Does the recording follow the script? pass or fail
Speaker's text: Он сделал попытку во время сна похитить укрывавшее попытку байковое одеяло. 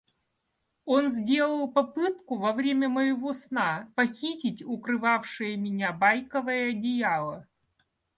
fail